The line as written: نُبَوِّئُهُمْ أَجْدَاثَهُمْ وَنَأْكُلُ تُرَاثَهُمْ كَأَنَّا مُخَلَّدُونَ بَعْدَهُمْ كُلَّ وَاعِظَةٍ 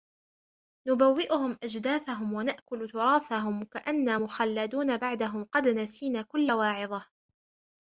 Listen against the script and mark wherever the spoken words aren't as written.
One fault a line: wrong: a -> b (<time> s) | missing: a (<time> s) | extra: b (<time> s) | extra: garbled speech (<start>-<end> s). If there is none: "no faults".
extra: قَدْ نَسِينَا (5.4 s)